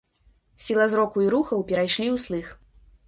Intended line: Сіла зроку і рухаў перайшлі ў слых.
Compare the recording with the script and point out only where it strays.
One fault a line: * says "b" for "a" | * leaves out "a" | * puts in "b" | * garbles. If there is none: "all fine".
all fine